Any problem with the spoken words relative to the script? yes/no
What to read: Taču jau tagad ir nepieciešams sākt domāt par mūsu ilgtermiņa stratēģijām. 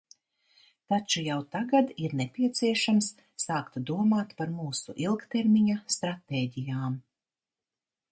no